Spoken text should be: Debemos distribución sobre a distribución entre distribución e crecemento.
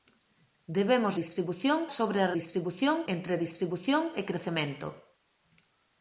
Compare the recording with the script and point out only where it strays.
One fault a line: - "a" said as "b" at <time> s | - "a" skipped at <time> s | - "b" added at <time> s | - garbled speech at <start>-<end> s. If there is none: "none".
none